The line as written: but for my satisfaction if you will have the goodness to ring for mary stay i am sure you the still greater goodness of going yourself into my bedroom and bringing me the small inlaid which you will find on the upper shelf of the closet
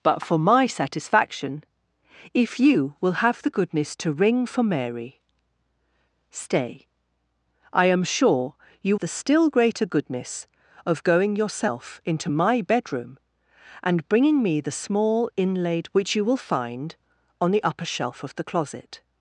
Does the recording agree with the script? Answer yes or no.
yes